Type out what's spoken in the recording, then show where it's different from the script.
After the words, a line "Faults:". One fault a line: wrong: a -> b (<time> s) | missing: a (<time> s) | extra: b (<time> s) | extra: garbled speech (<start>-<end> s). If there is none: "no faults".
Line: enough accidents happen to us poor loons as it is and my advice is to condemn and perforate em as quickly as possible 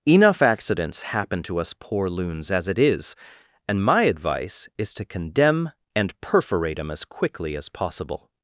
enough accidents happen to us poor loons as it is and my advice is to condemn and perforate em as quickly as possible
Faults:
no faults